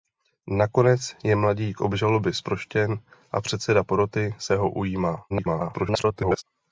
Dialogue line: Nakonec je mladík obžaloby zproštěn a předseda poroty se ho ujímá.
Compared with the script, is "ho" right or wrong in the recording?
right